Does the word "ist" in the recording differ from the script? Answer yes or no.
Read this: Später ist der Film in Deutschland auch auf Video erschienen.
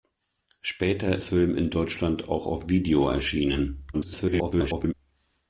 yes